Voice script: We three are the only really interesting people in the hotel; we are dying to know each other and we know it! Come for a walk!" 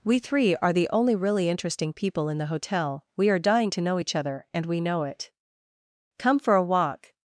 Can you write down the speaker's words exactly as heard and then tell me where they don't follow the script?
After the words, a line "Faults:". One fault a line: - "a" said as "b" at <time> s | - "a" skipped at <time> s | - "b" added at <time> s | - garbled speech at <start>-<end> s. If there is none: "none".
We three are the only really interesting people in the hotel; we are dying to know each other and we know it! Come for a walk!"
Faults:
none